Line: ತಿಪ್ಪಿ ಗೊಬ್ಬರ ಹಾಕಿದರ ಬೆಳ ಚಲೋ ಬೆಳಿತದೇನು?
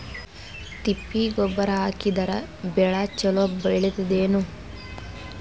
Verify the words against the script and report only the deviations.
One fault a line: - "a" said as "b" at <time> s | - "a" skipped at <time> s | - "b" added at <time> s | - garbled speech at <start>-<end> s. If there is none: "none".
none